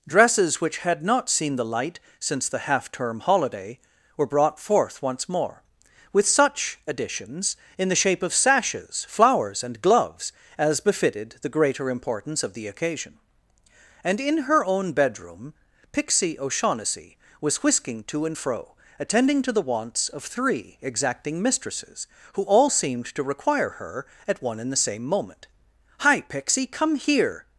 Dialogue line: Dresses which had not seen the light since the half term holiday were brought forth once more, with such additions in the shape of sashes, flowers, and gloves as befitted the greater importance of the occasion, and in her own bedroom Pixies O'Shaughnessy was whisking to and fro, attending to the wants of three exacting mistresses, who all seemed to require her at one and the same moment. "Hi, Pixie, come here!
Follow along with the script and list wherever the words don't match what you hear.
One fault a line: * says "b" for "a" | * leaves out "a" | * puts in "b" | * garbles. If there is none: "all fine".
* says "Pixie" for "Pixies"